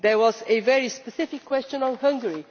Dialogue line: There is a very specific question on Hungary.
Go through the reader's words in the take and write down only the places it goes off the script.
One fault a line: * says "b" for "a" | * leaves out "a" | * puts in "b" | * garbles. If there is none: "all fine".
* says "was" for "is"